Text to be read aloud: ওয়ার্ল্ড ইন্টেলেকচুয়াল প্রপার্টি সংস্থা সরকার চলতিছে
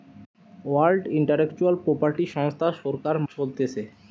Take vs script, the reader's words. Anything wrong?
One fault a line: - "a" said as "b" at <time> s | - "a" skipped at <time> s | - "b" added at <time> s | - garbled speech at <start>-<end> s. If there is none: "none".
none